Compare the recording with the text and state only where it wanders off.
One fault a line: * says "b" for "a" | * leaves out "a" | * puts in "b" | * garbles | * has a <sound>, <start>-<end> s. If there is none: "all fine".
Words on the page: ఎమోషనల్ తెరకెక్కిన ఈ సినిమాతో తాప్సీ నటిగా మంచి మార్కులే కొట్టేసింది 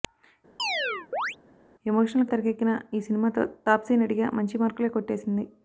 * has a chirp, 0.6-1.4 s